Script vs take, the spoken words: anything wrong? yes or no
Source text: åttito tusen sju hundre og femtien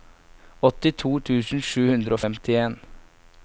no